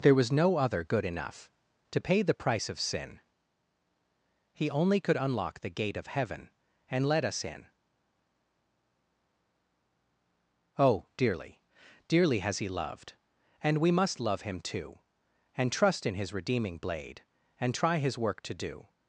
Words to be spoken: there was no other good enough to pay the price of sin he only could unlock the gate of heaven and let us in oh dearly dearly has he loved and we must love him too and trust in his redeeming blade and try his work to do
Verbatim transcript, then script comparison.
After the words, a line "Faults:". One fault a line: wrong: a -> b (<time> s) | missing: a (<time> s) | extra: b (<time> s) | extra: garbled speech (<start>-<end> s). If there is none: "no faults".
there was no other good enough to pay the price of sin he only could unlock the gate of heaven and let us in oh dearly dearly has he loved and we must love him too and trust in his redeeming blade and try his work to do
Faults:
no faults